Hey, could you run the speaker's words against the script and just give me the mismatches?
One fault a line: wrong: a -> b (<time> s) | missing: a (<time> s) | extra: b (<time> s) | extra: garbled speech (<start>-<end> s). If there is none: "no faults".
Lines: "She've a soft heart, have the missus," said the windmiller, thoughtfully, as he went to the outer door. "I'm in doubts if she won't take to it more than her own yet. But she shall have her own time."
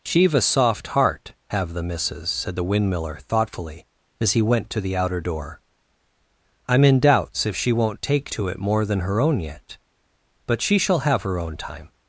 no faults